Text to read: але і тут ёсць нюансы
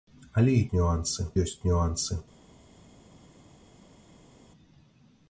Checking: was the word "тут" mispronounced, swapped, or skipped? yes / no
yes